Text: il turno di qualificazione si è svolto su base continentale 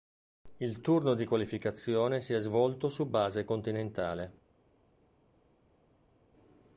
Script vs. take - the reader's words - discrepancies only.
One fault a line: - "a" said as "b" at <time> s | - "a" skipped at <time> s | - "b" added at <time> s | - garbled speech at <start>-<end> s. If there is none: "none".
none